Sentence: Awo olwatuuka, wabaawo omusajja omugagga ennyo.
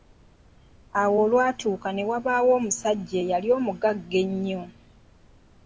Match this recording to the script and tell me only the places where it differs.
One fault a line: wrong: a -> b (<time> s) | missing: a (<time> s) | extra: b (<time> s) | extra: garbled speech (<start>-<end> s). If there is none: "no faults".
extra: ne (1.9 s)
extra: eyali (3.2 s)